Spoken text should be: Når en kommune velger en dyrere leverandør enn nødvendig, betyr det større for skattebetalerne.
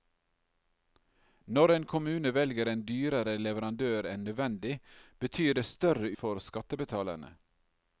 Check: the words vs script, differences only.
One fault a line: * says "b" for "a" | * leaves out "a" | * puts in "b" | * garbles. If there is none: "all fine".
all fine